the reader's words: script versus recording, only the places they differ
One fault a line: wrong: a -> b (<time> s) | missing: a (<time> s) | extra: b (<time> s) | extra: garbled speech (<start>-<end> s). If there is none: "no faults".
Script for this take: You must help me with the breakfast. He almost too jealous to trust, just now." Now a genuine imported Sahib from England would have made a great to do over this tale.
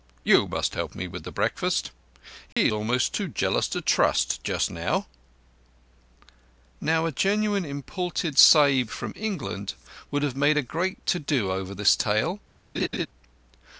no faults